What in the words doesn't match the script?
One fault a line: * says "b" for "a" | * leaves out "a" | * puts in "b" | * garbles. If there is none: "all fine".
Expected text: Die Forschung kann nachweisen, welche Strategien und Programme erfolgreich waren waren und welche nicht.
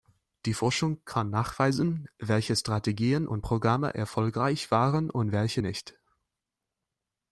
* leaves out "waren"